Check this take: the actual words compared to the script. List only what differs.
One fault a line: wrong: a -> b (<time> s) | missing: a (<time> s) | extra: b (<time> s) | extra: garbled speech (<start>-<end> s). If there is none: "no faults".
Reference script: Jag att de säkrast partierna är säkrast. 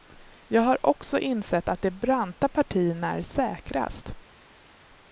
extra: har också insett (0.6 s)
wrong: säkrast -> branta (1.9 s)